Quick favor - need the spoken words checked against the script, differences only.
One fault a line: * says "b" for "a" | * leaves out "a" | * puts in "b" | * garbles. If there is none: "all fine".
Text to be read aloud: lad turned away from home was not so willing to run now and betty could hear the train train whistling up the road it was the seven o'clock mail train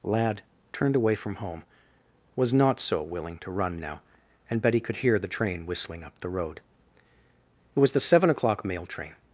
* leaves out "train"